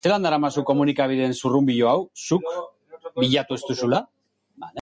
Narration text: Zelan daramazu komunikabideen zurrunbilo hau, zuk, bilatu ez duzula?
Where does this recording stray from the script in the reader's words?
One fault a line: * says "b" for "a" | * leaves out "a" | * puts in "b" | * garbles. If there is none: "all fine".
all fine